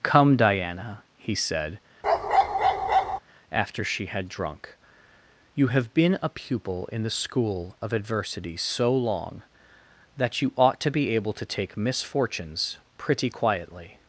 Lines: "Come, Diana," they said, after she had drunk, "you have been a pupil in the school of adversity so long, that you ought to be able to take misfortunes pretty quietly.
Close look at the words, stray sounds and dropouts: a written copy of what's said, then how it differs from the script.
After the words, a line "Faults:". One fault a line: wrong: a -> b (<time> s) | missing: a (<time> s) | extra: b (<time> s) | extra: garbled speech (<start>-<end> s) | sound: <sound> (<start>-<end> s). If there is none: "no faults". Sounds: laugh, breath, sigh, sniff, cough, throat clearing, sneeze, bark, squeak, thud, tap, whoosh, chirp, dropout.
"Come, Diana," he said, after she had drunk, "you have been a pupil in the school of adversity so long, that you ought to be able to take misfortunes pretty quietly.
Faults:
wrong: they -> he (1.1 s)
sound: bark (2.0-3.2 s)